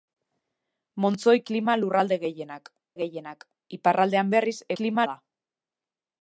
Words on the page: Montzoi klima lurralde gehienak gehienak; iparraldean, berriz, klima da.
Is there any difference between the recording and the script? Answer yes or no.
no